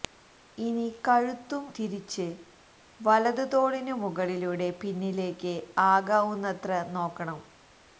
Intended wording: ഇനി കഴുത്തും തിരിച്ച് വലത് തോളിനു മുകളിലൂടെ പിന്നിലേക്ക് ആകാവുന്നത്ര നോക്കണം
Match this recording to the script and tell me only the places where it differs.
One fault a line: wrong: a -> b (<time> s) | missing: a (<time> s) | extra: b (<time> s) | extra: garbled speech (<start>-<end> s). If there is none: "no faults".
no faults